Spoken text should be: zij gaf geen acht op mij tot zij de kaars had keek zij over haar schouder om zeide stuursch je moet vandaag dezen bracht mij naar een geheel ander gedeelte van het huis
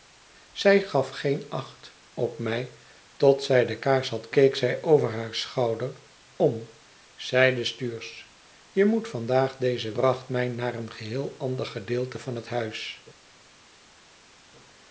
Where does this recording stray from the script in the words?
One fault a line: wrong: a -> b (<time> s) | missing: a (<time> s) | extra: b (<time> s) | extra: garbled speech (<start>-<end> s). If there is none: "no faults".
no faults